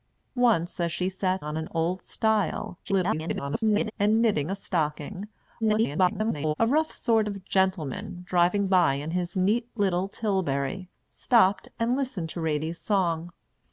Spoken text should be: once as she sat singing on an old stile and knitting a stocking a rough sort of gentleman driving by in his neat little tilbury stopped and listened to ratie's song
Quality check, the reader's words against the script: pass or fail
fail